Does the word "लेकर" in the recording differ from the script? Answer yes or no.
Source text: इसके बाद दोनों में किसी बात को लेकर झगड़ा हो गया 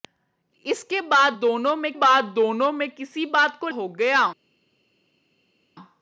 yes